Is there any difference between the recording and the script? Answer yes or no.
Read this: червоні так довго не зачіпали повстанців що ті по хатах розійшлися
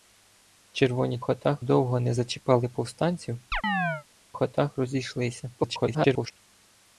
yes